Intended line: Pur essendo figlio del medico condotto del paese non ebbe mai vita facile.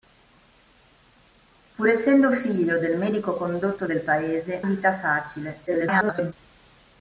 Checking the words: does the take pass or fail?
fail